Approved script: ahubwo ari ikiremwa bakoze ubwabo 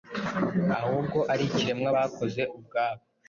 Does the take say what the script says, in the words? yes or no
yes